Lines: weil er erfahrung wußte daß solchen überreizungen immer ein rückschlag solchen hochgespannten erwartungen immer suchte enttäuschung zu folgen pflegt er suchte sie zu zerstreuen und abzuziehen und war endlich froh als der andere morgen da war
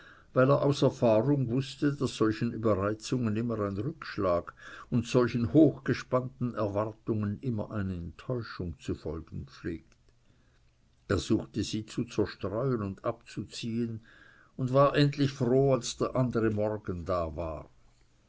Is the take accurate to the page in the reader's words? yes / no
no